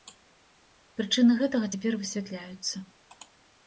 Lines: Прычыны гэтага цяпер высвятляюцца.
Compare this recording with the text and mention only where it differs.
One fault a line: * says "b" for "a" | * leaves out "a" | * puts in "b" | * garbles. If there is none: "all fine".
all fine